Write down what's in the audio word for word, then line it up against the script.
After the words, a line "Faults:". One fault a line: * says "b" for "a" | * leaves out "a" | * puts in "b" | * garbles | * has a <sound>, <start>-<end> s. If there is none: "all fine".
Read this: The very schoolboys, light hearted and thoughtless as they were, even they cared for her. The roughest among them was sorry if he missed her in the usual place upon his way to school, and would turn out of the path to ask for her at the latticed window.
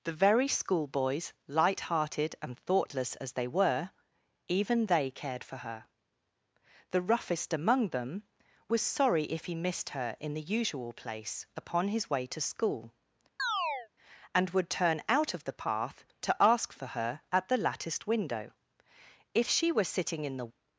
The very schoolboys, light hearted and thoughtless as they were, even they cared for her. The roughest among them was sorry if he missed her in the usual place upon his way to school, and would turn out of the path to ask for her at the latticed window. If she were sitting in the
Faults:
* has a chirp, 13.4-13.9 s
* puts in "If she were sitting in the"